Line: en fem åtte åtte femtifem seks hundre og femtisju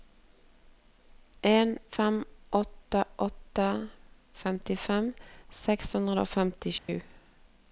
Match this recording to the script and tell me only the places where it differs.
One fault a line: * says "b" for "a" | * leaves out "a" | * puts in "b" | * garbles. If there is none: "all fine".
all fine